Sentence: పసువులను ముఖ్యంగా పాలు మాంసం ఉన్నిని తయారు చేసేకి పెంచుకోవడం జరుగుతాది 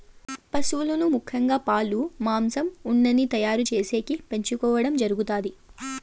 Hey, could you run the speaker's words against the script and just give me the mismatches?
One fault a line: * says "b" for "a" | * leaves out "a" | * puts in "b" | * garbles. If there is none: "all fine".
all fine